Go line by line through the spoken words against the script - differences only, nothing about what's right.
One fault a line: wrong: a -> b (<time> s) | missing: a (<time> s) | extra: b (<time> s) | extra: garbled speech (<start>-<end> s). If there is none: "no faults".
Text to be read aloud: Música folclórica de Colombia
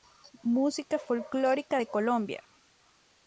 no faults